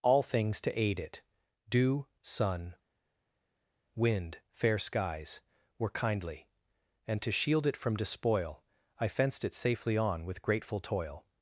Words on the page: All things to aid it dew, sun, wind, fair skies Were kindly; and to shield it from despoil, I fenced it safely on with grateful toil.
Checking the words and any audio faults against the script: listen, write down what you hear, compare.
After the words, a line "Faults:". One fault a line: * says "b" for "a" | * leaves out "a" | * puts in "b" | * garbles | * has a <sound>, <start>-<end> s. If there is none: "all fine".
All things to aid it dew, sun, wind, fair skies Were kindly; and to shield it from despoil, I fenced it safely on with grateful toil.
Faults:
all fine